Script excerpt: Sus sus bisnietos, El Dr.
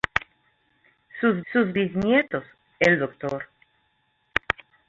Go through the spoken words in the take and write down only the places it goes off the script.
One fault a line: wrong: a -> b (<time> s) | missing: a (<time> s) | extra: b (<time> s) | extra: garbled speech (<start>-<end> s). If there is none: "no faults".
no faults